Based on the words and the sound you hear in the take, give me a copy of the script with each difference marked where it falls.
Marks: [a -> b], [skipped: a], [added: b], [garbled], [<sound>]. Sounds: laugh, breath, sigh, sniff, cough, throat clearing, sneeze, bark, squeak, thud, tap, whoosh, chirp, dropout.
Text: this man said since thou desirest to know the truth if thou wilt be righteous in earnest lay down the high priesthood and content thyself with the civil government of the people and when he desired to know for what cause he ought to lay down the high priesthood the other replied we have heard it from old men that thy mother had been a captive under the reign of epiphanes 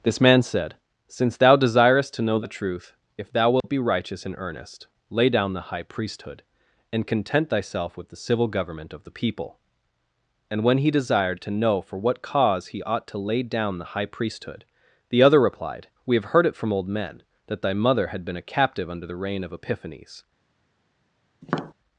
this man said since thou desirest to know the truth if thou wilt [dropout] be righteous in earnest lay down the high priesthood and content thyself with the civil government of the people and when he desired to know for what cause he ought to lay down the high priesthood the other replied we have heard it from old men that thy mother had been a captive under the reign of epiphanes [tap]